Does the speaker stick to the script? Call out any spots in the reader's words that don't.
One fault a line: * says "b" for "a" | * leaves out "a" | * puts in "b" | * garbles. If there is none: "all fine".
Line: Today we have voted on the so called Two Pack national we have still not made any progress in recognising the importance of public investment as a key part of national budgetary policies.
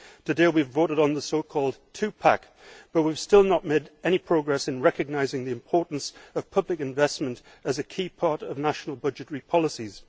* says "but" for "national"